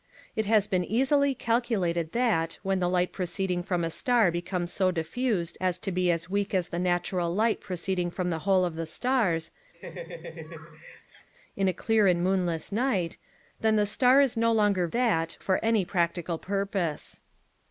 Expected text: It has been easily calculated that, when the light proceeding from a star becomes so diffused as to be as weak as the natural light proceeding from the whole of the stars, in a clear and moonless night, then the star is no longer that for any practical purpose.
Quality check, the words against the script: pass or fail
pass